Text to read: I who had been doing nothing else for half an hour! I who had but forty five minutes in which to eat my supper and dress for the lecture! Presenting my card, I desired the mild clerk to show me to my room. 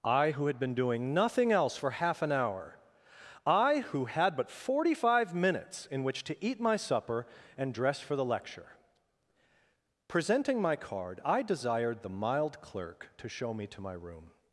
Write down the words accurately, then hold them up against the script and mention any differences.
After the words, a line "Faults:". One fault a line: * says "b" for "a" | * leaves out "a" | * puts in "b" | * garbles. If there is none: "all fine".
I who had been doing nothing else for half an hour! I who had but forty five minutes in which to eat my supper and dress for the lecture! Presenting my card, I desired the mild clerk to show me to my room.
Faults:
all fine